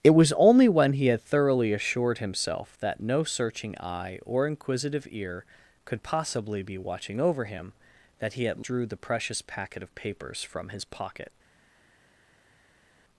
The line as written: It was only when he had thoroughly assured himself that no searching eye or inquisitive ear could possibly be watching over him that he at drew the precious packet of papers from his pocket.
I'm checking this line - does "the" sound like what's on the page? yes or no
yes